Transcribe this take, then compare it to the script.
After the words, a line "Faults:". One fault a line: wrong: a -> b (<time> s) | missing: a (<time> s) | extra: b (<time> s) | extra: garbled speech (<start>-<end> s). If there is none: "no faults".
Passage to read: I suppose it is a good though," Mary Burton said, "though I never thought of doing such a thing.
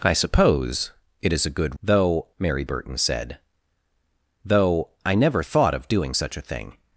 I suppose it is a good though," Mary Burton said, "though I never thought of doing such a thing.
Faults:
no faults